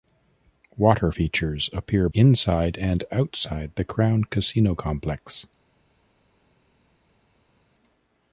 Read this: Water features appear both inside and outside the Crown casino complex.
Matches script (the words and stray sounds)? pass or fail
fail